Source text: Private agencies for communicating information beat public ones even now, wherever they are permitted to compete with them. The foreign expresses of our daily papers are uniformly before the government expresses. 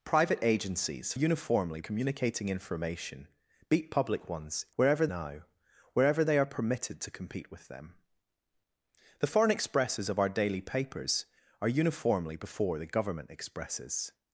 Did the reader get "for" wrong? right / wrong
wrong